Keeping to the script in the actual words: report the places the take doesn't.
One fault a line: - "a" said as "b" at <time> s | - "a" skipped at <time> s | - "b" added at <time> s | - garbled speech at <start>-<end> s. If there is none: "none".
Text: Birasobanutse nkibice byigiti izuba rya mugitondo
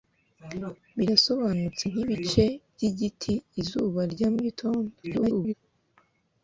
- garbled speech at 5.0-5.5 s